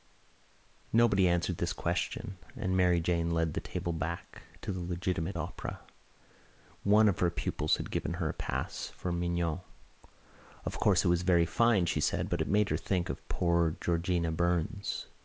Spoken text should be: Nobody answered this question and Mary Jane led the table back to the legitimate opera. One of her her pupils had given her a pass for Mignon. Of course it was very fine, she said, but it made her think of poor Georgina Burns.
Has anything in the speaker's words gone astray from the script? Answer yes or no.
yes